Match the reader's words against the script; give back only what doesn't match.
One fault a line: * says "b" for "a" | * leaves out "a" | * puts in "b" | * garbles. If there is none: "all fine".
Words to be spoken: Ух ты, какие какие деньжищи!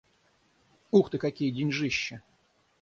* leaves out "какие"